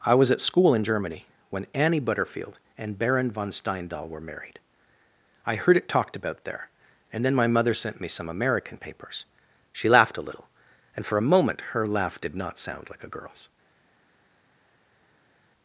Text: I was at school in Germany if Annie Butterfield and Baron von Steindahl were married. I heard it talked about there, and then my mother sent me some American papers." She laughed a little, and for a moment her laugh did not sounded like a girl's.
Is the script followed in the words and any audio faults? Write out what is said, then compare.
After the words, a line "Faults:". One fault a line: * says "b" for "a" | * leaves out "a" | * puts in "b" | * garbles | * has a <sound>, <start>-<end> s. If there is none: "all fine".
I was at school in Germany when Annie Butterfield and Baron von Steindahl were married. I heard it talked about there, and then my mother sent me some American papers." She laughed a little, and for a moment her laugh did not sound like a girl's.
Faults:
* says "when" for "if"
* says "sound" for "sounded"